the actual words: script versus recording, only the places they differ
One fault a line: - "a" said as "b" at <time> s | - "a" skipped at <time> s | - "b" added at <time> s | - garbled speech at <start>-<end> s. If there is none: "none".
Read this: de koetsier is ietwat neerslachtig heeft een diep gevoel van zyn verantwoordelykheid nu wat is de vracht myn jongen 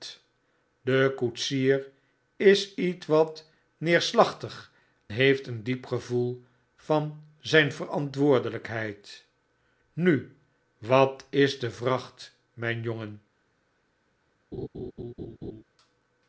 none